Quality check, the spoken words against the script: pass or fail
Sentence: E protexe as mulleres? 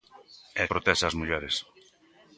pass